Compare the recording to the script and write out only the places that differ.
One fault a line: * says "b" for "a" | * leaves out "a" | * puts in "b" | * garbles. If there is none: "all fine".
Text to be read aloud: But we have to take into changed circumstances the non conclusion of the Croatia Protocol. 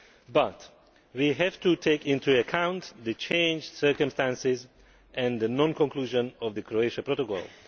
* puts in "account the"
* puts in "and"